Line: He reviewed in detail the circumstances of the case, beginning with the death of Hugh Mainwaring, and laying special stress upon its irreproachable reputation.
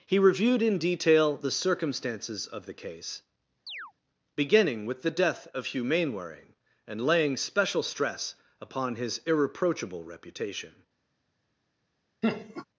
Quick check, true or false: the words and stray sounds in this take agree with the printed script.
false